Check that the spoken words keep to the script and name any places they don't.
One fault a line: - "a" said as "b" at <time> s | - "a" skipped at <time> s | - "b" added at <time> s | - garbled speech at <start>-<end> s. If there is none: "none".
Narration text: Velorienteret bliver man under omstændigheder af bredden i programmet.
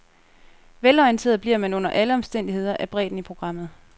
- "alle" added at 1.9 s